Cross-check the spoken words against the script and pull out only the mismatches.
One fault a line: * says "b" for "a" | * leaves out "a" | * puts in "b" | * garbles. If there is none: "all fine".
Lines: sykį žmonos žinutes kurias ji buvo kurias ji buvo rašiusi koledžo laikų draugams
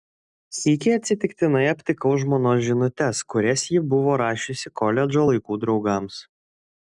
* puts in "atsitiktinai aptikau"
* leaves out "kurias ji buvo"